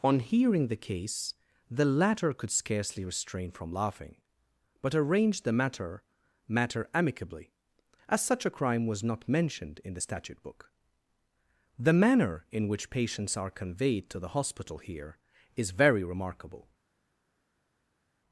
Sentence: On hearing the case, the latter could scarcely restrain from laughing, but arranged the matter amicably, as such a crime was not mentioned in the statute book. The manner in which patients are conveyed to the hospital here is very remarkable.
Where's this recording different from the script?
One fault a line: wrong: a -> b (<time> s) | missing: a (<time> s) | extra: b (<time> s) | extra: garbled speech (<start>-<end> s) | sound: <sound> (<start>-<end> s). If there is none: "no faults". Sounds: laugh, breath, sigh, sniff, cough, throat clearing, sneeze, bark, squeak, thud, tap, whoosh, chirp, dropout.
extra: matter (6.5 s)